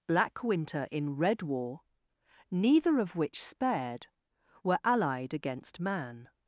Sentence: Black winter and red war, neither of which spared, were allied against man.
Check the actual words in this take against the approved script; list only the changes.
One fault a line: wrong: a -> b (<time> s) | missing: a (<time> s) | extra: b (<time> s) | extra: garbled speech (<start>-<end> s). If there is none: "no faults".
wrong: and -> in (0.9 s)